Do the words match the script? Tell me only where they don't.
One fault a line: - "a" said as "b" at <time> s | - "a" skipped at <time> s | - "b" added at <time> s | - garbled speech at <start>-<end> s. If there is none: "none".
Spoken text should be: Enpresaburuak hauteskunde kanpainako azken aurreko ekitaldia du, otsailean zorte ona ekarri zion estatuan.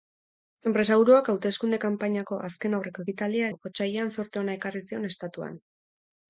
none